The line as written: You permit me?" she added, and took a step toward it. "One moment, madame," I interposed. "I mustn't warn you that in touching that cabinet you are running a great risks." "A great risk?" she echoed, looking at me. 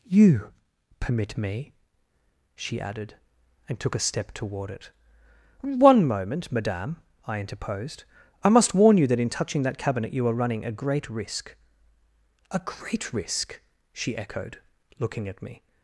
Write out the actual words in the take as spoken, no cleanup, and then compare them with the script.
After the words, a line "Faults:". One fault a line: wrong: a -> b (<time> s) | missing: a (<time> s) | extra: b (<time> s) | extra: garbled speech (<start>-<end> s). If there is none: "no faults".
You permit me?" she added, and took a step toward it. "One moment, madame," I interposed. "I must warn you that in touching that cabinet you are running a great risk." "A great risk?" she echoed, looking at me.
Faults:
wrong: mustn't -> must (8.5 s)
wrong: risks -> risk (11.1 s)